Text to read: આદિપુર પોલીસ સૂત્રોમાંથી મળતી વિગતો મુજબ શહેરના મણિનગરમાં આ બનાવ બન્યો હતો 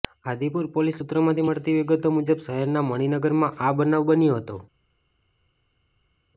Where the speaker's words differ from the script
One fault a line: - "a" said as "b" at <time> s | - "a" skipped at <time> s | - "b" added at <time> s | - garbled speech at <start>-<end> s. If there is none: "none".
none